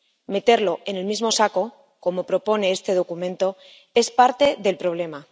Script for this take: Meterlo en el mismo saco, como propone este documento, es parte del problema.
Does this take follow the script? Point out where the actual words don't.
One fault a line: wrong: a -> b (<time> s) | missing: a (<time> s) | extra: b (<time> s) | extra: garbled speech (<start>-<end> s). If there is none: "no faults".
no faults